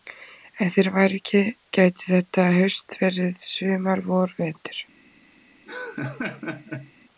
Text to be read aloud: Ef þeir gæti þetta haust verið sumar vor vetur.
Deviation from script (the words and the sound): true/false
true